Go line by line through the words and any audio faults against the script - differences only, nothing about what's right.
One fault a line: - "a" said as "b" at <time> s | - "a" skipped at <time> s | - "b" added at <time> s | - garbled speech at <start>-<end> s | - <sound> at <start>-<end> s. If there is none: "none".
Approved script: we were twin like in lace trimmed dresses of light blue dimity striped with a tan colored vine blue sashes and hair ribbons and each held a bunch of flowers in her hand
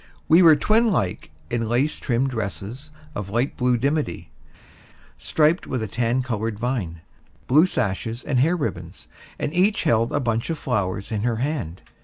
none